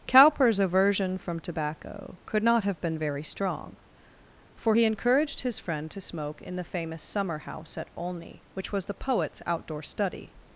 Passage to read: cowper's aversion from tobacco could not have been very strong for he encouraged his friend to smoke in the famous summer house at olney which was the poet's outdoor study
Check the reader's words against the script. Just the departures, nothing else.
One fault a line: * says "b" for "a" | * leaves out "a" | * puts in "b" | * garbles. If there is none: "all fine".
all fine